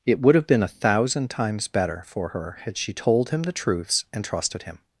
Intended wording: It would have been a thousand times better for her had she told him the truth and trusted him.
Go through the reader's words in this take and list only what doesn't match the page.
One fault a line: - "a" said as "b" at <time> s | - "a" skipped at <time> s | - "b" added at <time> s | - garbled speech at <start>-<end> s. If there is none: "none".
- "truth" said as "truths" at 3.5 s